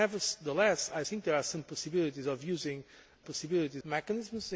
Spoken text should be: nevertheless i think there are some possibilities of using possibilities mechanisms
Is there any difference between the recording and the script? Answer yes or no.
no